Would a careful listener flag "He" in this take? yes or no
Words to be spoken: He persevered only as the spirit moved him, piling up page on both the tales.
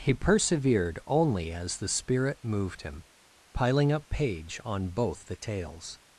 no